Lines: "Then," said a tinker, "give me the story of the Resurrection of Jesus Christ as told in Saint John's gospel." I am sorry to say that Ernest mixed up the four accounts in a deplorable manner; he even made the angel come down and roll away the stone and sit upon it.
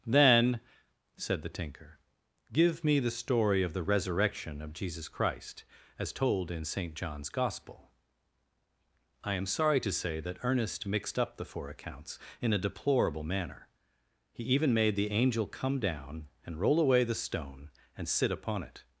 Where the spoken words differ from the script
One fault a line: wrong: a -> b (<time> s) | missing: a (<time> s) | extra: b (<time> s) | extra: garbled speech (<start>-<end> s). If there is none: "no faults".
wrong: a -> the (1.4 s)